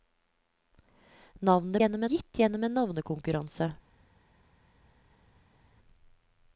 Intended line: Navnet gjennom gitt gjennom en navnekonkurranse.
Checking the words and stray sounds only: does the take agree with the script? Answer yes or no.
yes